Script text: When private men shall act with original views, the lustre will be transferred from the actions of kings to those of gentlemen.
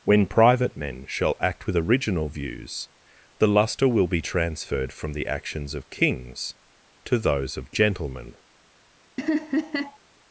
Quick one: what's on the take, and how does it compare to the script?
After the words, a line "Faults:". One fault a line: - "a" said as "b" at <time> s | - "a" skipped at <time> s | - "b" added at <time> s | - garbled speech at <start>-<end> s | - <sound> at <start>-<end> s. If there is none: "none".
When private men shall act with original views, the lustre will be transferred from the actions of kings to those of gentlemen.
Faults:
- laugh at 9.2-10.0 s